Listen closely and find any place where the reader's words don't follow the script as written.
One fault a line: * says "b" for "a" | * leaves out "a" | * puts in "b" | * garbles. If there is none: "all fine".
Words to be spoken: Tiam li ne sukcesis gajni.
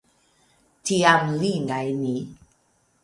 * leaves out "ne sukcesis"